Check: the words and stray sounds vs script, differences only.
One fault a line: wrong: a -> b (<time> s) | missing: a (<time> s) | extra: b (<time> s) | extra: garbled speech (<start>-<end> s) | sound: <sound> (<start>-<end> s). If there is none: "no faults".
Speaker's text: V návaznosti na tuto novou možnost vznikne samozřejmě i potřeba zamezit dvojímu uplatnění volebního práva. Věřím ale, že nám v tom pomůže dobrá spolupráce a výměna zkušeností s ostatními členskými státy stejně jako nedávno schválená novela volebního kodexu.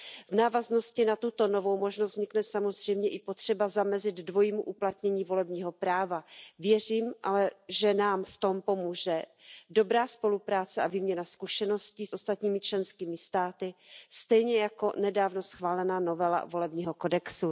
no faults